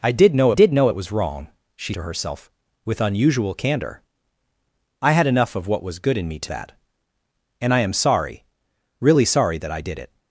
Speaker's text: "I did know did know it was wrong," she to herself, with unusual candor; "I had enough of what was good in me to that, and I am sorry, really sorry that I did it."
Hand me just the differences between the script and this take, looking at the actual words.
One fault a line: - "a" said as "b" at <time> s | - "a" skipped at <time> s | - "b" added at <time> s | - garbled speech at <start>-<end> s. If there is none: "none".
none